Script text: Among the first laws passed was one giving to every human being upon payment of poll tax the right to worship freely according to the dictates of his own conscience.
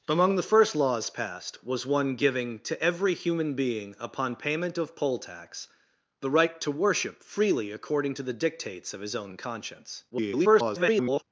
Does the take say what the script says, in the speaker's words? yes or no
no